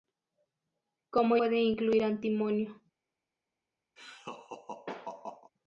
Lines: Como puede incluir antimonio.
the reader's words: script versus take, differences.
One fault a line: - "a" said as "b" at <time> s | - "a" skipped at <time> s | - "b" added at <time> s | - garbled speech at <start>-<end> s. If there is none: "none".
none